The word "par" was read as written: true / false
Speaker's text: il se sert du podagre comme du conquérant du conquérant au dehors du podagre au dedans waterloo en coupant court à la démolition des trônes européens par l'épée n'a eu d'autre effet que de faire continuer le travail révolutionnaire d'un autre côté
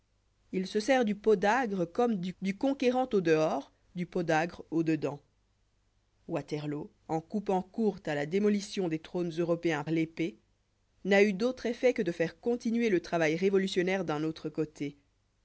false